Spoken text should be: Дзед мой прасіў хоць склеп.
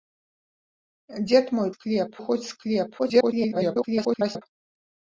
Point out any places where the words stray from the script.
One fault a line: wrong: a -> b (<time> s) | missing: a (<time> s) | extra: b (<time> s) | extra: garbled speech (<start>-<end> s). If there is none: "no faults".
wrong: прасіў -> склеп (1.8 s)
extra: garbled speech (3.0-4.4 s)